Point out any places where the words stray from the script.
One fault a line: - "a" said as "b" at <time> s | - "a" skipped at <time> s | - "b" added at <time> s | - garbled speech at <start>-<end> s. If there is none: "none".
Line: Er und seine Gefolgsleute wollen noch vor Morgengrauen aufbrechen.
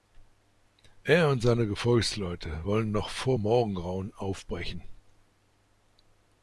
none